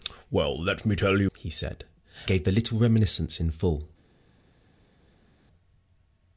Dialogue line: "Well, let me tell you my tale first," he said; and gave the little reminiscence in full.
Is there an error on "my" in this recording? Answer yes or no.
yes